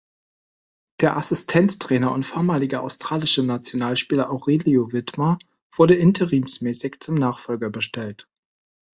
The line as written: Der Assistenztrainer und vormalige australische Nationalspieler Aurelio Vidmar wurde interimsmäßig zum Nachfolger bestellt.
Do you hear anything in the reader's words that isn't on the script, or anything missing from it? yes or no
no